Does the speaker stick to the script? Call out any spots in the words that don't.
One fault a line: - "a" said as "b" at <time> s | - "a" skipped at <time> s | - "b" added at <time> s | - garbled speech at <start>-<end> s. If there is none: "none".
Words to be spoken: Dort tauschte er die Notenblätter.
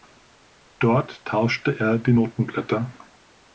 none